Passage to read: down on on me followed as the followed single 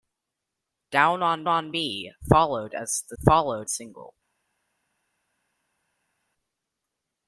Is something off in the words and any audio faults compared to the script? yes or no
no